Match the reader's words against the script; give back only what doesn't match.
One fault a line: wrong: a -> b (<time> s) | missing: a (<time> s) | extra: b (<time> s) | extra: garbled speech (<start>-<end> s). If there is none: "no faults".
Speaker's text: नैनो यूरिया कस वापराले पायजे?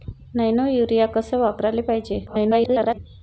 extra: garbled speech (2.3-3.0 s)